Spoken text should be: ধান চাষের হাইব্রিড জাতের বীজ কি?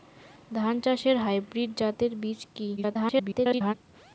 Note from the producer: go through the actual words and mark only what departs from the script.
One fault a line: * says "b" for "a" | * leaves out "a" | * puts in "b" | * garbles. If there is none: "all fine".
* garbles